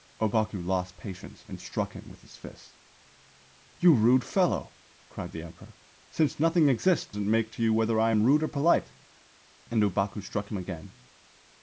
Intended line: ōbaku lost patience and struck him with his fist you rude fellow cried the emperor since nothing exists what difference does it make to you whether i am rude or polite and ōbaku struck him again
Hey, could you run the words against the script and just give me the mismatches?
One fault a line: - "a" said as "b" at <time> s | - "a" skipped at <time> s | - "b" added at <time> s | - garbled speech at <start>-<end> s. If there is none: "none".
- "what difference does" skipped at 7.2 s